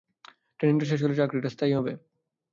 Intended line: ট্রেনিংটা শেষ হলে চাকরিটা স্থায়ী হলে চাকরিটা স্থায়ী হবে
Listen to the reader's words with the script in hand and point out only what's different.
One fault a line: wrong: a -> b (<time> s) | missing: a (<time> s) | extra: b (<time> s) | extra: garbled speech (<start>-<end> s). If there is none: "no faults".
missing: হলে চাকরিটা স্থায়ী (1.7 s)